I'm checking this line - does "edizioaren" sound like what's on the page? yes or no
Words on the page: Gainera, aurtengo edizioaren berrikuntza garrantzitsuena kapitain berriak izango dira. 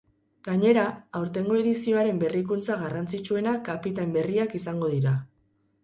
yes